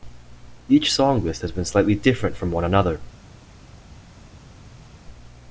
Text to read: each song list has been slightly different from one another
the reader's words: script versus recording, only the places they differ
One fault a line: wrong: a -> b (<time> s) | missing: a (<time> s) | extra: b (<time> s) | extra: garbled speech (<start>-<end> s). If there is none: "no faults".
no faults